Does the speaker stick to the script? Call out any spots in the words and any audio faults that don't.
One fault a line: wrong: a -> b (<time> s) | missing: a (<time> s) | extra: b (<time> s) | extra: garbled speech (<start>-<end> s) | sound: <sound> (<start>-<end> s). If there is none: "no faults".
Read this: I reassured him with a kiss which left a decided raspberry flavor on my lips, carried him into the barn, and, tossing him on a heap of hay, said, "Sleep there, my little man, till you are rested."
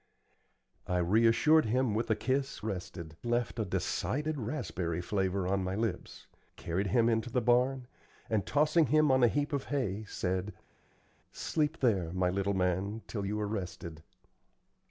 wrong: which -> rested (2.6 s)